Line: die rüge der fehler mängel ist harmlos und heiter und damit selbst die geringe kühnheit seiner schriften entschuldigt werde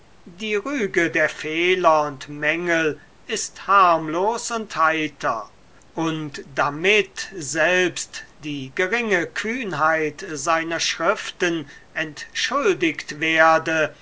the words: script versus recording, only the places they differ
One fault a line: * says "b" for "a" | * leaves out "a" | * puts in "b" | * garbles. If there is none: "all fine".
* puts in "und"